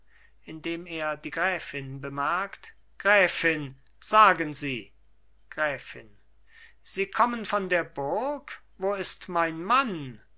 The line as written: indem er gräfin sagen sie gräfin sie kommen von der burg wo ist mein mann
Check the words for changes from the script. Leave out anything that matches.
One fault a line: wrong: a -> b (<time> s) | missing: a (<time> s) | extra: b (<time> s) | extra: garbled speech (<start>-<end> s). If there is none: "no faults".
extra: die gräfin bemerkt (1.1 s)